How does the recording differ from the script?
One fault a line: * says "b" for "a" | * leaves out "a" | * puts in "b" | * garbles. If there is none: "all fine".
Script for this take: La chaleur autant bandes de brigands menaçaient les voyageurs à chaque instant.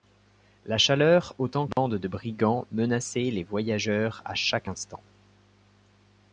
all fine